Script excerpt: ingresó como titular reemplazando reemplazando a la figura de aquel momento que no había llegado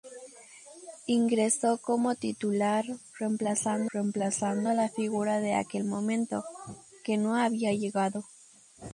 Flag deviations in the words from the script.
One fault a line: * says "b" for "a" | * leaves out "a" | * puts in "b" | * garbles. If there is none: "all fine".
all fine